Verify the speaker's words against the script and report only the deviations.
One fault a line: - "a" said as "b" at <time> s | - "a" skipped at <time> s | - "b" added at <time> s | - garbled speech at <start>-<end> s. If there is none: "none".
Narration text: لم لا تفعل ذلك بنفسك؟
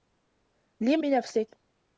- "لا تفعل ذلك" skipped at 1.0 s